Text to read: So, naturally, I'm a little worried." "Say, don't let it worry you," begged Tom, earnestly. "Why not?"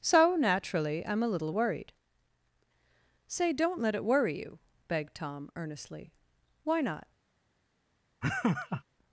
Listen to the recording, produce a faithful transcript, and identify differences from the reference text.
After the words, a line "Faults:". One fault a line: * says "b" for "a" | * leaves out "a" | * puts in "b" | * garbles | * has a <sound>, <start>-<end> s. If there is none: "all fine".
So, naturally, I'm a little worried." "Say, don't let it worry you," begged Tom, earnestly. "Why not?"
Faults:
* has a laugh, 8.2-8.8 s